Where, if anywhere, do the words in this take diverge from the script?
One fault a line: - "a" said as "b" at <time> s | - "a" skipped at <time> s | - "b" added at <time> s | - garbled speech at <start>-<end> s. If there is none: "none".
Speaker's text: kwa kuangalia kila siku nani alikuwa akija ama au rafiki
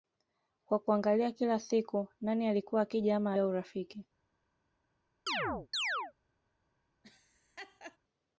none